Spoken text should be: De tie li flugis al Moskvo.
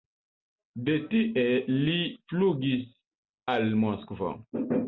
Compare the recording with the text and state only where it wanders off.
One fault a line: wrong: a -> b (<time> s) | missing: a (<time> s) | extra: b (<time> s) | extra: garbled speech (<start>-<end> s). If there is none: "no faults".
no faults